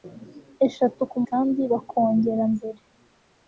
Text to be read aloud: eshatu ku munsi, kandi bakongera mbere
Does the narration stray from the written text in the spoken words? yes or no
yes